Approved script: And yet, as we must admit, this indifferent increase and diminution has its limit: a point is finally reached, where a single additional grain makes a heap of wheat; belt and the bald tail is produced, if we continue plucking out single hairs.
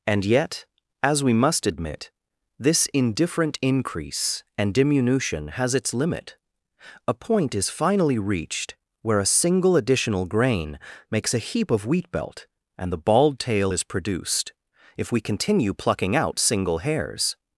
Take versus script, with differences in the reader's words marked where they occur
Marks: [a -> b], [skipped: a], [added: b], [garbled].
And yet, as we must admit, this indifferent increase and diminution has its limit: a point is finally reached, where a single additional grain makes a heap of wheat; belt and the bald tail is produced, if we continue plucking out single hairs.